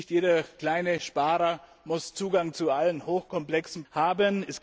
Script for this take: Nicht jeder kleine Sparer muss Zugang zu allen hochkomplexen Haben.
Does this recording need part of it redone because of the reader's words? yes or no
no